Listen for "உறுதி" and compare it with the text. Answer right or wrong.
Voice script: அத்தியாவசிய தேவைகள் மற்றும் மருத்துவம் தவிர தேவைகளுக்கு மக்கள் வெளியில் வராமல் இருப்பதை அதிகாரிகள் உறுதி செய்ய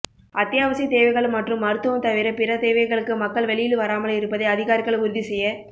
right